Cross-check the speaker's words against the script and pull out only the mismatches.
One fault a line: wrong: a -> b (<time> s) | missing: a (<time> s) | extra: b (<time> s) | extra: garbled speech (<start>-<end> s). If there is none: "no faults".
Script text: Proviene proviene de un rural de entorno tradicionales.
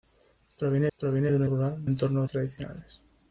no faults